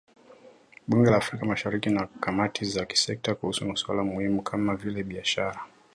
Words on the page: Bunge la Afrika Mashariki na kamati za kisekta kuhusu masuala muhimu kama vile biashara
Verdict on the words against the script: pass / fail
pass